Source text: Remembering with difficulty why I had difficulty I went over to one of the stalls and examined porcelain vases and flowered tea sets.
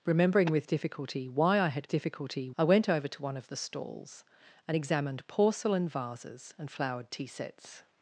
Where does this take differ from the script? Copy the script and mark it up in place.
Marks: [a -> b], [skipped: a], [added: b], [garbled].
Remembering with difficulty why I had difficulty I went over to one of the stalls and examined porcelain vases and flowered tea sets.